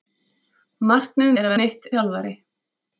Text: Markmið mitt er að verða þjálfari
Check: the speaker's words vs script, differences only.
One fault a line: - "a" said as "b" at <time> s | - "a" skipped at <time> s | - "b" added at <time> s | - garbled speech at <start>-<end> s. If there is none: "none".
- "mitt" skipped at 1.3 s
- "verða" said as "mitt" at 1.6 s